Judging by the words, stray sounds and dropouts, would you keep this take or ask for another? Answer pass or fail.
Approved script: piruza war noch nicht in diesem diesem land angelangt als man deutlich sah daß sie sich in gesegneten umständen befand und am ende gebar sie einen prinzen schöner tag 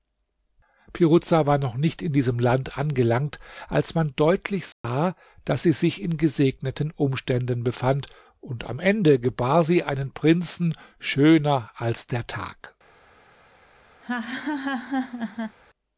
fail